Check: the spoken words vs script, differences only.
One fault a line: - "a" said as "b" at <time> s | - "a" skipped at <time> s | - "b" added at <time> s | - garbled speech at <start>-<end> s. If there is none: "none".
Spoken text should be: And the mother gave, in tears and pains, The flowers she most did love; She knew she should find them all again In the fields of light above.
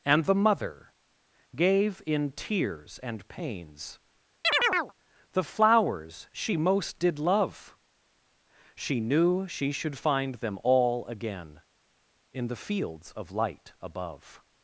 none